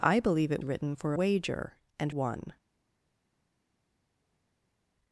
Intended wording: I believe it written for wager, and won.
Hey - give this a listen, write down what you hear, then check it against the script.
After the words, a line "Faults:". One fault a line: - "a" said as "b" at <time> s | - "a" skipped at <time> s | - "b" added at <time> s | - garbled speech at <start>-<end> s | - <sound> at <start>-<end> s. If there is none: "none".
I believe it written for wager, and won.
Faults:
none